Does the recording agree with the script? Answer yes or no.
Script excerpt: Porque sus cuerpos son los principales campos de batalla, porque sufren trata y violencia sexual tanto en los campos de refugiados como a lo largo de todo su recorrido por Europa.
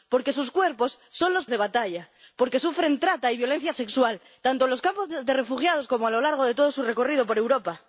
no